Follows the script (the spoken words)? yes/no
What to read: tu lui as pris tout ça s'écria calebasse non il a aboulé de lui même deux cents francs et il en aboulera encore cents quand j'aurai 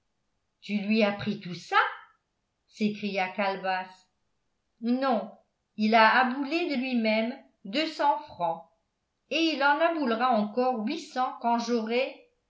no